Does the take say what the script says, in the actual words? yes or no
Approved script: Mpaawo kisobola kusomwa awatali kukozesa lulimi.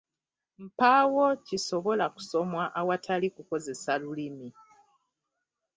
yes